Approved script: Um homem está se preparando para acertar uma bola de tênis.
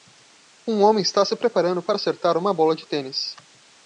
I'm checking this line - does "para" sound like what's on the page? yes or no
yes